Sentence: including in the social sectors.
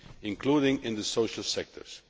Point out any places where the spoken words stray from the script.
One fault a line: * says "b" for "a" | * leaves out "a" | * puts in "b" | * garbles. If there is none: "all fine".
all fine